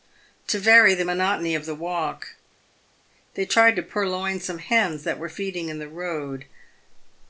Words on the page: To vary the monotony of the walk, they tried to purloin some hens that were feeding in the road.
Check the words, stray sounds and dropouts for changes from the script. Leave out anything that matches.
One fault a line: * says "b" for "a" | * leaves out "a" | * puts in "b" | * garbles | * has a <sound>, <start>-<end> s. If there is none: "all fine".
all fine